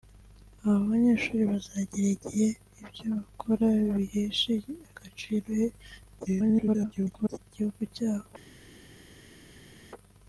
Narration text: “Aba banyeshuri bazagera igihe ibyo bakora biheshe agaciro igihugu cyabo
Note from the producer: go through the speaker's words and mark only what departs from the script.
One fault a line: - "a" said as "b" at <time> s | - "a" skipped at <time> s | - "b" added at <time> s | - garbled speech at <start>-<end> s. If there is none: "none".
- garbled speech at 6.2-7.4 s